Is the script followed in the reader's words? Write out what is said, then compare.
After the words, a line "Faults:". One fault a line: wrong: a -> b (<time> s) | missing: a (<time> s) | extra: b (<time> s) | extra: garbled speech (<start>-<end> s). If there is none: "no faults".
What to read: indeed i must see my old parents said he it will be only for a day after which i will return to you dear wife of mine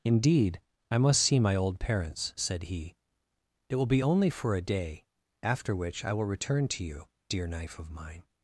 indeed i must see my old parents said he it will be only for a day after which i will return to you dear knife of mine
Faults:
wrong: wife -> knife (7.5 s)